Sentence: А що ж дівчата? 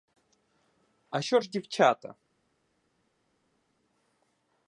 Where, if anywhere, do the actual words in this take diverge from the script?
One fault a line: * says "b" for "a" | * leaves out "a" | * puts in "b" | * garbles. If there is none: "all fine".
all fine